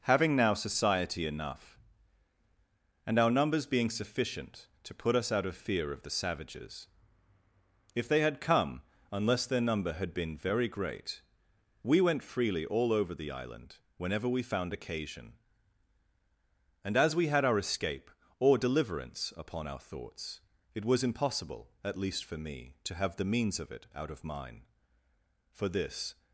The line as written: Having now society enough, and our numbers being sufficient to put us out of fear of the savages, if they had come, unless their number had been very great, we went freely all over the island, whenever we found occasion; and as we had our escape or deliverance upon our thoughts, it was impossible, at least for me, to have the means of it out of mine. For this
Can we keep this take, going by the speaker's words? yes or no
yes